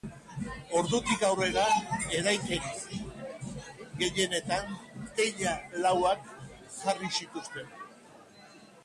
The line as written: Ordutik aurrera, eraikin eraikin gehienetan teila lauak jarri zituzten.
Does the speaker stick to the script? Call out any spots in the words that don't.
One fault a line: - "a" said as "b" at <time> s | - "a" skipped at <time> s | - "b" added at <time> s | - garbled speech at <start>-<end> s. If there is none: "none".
- "eraikin" skipped at 2.6 s